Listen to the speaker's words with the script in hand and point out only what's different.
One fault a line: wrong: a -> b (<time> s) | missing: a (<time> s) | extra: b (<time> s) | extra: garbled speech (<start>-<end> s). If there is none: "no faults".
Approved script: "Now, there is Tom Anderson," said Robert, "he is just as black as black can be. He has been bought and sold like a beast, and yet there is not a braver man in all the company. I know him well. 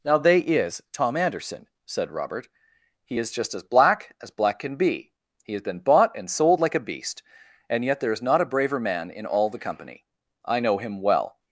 wrong: there -> they (0.2 s)